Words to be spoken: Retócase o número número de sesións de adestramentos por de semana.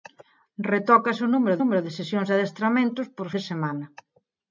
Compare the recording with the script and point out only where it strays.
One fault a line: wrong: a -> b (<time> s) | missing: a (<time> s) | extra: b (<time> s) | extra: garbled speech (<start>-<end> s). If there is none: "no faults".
no faults